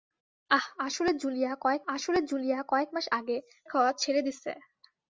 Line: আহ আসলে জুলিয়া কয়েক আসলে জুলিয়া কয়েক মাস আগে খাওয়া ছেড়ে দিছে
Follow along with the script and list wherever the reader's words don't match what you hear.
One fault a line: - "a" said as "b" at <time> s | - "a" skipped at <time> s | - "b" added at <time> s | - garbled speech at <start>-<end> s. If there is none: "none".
none